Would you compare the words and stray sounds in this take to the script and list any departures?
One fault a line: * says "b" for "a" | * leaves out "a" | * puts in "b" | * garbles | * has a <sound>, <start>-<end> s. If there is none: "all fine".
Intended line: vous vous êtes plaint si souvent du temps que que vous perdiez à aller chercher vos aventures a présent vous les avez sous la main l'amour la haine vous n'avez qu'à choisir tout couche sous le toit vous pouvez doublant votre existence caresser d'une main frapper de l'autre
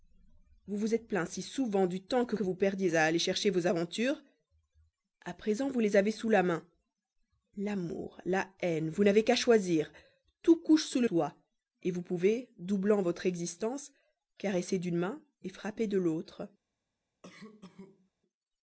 * has a cough, 17.2-18.1 s